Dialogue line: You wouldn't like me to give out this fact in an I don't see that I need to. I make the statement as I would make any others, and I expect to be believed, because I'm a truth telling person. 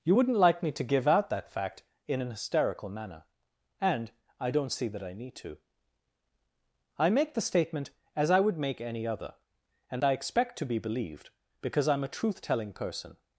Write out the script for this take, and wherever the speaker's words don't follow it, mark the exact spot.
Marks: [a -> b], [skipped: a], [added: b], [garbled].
You wouldn't like me to give out [this -> that] fact in an [added: hysterical manner and] I don't see that I need to. I make the statement as I would make any [others, -> other] and I expect to be believed, because I'm a truth telling person.